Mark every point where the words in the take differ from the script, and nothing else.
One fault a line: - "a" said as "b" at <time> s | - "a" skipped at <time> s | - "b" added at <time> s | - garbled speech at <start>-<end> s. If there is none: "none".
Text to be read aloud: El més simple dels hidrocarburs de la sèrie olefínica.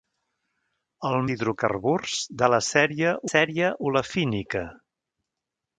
- "més simple dels" skipped at 1.2 s
- "sèrie" added at 3.3 s